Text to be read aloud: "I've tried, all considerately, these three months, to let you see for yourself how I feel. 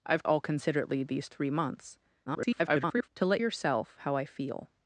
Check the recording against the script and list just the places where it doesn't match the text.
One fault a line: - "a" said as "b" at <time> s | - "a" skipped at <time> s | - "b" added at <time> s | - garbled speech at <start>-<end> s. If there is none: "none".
- "tried" skipped at 0.2 s
- garbled speech at 2.3-3.1 s
- "you see for" skipped at 3.4 s